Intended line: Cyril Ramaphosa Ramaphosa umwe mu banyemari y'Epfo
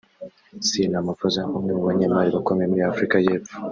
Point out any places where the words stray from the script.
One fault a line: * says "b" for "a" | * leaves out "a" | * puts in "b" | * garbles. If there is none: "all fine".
* leaves out "Ramaphosa"
* puts in "bakomeye muri Afurika"